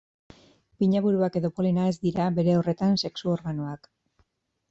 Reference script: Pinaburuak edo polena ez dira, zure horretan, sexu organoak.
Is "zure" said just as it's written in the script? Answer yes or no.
no